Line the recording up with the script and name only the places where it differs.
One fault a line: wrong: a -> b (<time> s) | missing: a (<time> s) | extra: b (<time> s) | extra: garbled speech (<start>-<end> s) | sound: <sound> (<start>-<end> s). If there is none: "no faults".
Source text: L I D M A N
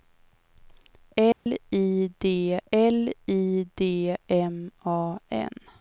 sound: dropout (1.3-1.5 s)
extra: l I D (2.7 s)